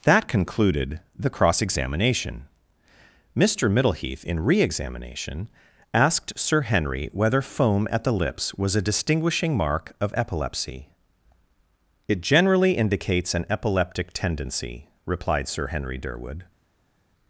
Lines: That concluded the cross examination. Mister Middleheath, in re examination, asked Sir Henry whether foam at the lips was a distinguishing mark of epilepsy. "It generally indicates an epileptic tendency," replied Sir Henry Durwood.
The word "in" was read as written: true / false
true